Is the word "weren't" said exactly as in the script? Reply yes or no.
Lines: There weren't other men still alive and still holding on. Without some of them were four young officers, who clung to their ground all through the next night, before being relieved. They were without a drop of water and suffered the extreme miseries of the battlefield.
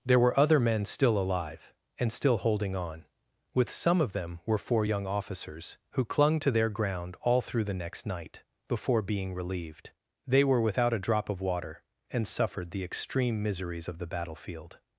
no